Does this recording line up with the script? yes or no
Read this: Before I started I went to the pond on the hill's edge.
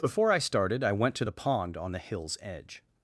yes